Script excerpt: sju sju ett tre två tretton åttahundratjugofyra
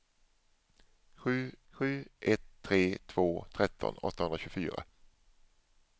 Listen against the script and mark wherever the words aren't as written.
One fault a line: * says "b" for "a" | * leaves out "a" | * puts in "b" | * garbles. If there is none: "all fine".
all fine